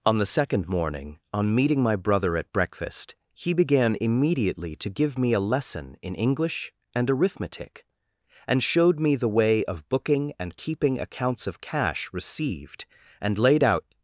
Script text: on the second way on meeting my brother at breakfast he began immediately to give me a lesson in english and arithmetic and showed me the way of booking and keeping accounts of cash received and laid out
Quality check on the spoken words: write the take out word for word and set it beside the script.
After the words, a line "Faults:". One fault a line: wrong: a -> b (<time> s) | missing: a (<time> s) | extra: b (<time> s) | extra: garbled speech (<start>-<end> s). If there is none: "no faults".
on the second morning on meeting my brother at breakfast he began immediately to give me a lesson in english and arithmetic and showed me the way of booking and keeping accounts of cash received and laid out
Faults:
wrong: way -> morning (0.7 s)